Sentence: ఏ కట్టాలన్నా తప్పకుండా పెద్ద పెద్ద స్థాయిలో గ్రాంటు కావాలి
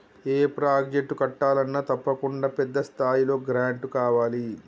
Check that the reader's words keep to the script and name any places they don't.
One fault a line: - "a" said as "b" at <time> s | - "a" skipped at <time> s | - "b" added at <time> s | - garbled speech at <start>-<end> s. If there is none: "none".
- "ప్రాజెక్టు" added at 0.6 s
- "పెద్ద" skipped at 2.8 s